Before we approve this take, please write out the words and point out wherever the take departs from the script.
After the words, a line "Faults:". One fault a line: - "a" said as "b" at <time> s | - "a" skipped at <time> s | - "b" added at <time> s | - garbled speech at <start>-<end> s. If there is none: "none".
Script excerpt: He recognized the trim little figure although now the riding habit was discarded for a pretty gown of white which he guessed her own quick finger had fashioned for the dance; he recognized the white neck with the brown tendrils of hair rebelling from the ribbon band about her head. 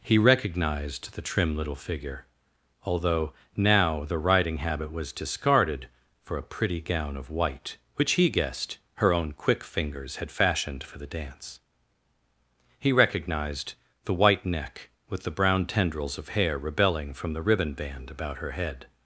He recognized the trim little figure although now the riding habit was discarded for a pretty gown of white which he guessed her own quick fingers had fashioned for the dance; he recognized the white neck with the brown tendrils of hair rebelling from the ribbon band about her head.
Faults:
- "finger" said as "fingers" at 9.6 s